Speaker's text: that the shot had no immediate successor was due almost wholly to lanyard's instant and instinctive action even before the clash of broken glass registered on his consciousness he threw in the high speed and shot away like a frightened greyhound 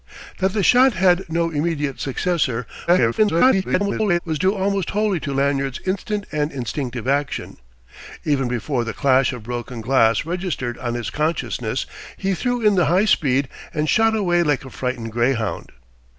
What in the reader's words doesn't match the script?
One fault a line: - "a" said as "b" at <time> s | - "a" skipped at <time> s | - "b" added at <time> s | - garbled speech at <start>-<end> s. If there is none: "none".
- garbled speech at 2.9-4.2 s